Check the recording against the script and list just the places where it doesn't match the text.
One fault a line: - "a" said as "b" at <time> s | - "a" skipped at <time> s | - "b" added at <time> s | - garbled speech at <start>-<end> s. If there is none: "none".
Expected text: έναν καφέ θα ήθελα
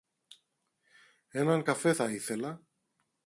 none